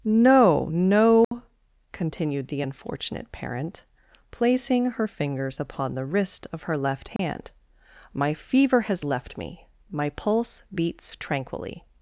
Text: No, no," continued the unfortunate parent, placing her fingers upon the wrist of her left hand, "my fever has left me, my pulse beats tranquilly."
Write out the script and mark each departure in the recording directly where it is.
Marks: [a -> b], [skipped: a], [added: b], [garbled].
No, no," continued the unfortunate parent, placing her fingers upon the wrist of her left hand, "my fever has left me, my pulse beats tranquilly."